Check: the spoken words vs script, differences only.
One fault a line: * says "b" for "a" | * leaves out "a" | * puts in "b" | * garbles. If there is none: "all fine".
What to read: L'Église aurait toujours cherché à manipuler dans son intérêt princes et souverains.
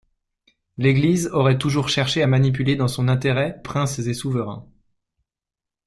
all fine